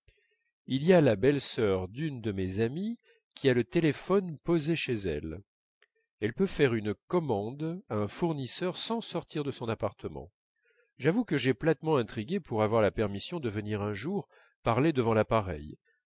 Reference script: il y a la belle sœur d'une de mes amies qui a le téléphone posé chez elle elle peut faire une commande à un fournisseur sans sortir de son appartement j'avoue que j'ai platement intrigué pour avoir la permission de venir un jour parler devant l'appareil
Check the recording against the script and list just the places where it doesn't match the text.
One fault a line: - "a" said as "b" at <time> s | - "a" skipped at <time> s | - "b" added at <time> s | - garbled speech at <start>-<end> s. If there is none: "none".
none